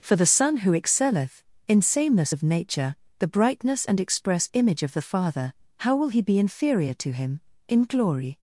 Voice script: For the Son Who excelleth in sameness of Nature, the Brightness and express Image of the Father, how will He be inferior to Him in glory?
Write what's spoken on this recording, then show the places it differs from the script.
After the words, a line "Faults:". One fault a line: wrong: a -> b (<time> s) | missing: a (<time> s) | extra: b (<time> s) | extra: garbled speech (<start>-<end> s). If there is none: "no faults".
For the Son Who excelleth in sameness of Nature, the Brightness and express Image of the Father, how will He be inferior to Him in glory?
Faults:
no faults